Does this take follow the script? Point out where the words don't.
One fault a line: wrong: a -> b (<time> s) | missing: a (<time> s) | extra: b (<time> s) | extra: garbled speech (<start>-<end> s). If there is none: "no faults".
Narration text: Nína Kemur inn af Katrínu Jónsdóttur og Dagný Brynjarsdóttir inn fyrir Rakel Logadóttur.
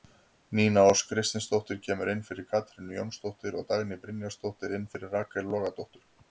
extra: Ósk Kristinsdóttir (0.9 s)
wrong: af -> fyrir (2.3 s)